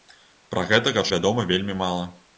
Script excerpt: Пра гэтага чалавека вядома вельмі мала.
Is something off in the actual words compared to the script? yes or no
yes